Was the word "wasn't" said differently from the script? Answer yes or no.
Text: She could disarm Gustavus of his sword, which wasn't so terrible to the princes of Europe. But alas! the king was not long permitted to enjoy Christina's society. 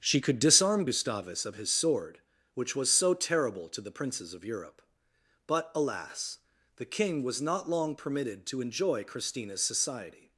yes